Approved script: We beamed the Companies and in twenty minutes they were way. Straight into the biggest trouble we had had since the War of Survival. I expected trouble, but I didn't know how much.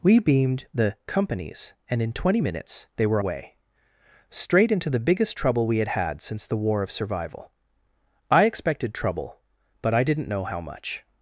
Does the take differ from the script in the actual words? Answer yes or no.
no